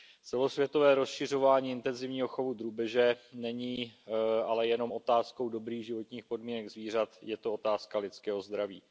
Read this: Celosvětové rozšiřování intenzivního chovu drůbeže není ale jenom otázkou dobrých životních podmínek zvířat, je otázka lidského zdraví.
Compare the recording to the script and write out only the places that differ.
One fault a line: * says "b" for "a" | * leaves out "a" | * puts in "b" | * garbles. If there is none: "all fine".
* puts in "to"